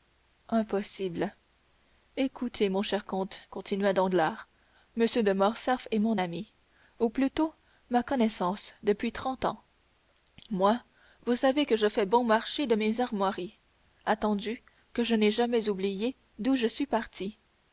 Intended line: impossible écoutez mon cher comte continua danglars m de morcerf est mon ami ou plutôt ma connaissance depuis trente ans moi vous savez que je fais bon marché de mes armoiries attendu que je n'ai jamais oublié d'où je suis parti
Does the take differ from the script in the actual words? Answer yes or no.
no